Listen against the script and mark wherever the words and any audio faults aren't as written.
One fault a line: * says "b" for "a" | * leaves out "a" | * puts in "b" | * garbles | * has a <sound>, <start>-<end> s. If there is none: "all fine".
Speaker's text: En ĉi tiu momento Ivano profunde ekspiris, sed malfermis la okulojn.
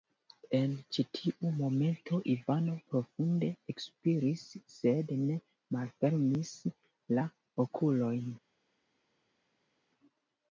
* puts in "ne"